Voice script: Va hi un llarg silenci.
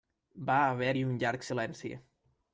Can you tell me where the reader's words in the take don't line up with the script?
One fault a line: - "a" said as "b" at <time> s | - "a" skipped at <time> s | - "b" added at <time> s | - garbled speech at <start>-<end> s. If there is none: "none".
- "haver" added at 0.7 s